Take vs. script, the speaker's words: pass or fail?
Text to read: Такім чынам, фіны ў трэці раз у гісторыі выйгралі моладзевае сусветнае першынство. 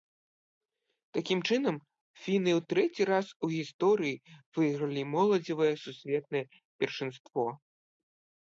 pass